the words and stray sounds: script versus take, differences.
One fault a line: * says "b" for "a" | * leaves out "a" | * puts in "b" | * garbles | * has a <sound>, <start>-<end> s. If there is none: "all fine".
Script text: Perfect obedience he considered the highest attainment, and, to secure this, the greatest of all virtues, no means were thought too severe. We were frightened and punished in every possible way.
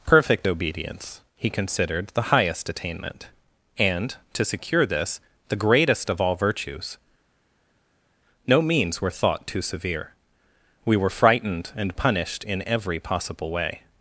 all fine